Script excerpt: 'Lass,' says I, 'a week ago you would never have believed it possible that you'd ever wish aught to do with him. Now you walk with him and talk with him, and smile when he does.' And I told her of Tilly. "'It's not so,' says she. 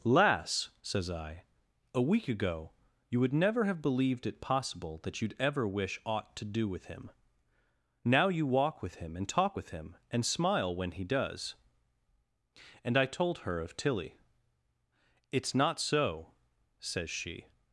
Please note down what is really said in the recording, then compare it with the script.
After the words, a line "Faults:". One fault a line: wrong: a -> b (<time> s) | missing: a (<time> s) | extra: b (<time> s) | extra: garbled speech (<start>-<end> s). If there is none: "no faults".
'Lass,' says I, 'a week ago you would never have believed it possible that you'd ever wish aught to do with him. Now you walk with him and talk with him, and smile when he does.' And I told her of Tilly. "'It's not so,' says she.
Faults:
no faults